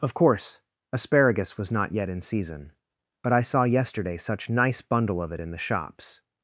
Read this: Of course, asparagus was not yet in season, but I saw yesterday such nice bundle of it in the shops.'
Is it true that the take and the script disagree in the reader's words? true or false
false